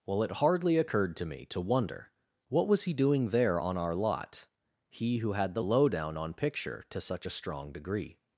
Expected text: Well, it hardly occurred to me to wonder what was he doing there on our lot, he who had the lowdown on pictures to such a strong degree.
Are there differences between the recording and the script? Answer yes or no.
yes